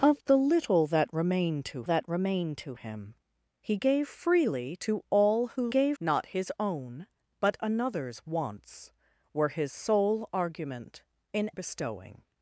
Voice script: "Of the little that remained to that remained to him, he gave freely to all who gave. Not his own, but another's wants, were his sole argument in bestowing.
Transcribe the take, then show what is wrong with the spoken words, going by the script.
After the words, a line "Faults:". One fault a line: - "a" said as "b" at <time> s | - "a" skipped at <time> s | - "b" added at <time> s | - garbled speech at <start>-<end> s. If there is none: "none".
"Of the little that remained to that remained to him, he gave freely to all who gave. Not his own, but another's wants, were his sole argument in bestowing.
Faults:
none